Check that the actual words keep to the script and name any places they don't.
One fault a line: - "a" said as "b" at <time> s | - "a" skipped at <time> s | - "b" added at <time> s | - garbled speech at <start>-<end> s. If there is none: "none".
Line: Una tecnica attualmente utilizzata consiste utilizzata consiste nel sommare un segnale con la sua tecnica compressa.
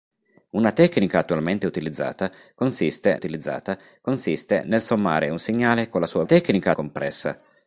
none